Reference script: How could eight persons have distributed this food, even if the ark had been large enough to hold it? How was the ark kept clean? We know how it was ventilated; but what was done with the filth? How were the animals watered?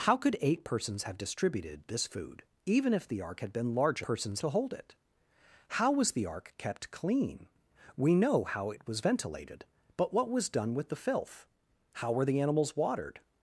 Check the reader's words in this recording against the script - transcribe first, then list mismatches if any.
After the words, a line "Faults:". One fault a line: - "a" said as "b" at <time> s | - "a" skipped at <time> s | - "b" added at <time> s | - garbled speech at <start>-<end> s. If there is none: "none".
How could eight persons have distributed this food, even if the ark had been large persons to hold it? How was the ark kept clean? We know how it was ventilated; but what was done with the filth? How were the animals watered?
Faults:
- "enough" said as "persons" at 4.0 s